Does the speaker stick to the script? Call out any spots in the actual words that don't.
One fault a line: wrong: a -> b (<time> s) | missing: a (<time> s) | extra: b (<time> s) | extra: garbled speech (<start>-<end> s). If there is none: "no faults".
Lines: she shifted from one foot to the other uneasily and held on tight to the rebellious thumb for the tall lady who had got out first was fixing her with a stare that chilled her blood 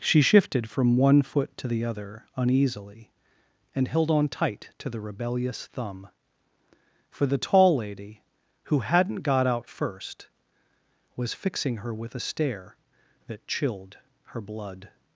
wrong: had -> hadn't (8.8 s)